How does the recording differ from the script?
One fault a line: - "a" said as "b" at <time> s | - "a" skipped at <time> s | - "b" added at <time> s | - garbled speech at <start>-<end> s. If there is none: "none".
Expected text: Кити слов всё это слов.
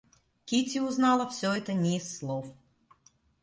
- "слов" said as "узнала" at 0.8 s
- "не из" added at 1.7 s